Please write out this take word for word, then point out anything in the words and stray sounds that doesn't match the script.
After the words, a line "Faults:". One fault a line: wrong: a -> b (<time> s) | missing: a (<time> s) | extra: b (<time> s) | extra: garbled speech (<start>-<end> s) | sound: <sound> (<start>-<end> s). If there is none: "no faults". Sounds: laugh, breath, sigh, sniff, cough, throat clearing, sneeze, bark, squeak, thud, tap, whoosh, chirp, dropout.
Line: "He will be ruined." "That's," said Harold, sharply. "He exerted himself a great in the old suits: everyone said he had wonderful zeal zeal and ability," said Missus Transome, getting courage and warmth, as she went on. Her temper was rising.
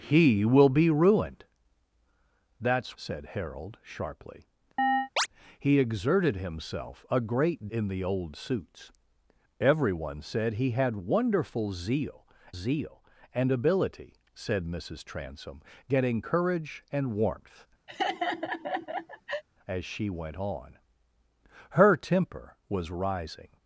"He will be ruined." "That's," said Harold, sharply. "He exerted himself a great in the old suits: everyone said he had wonderful zeal zeal and ability," said Missus Transome, getting courage and warmth, as she went on. Her temper was rising.
Faults:
sound: chirp (4.8-5.3 s)
sound: laugh (17.9-19.4 s)